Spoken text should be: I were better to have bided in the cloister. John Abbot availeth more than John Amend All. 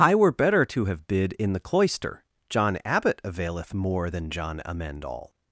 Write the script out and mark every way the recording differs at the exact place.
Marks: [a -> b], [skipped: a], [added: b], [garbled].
I were better to have [bided -> bid] in the cloister. John Abbot availeth more than John Amend All.